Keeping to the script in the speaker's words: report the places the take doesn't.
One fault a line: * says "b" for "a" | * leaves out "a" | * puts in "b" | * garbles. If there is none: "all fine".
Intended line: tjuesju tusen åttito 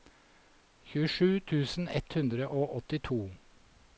* puts in "ett hundre og"